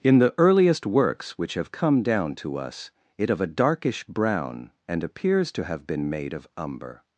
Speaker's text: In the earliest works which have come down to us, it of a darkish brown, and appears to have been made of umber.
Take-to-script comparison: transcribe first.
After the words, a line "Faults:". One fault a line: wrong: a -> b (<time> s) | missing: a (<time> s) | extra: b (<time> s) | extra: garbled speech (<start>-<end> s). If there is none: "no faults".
In the earliest works which have come down to us, it of a darkish brown, and appears to have been made of umber.
Faults:
no faults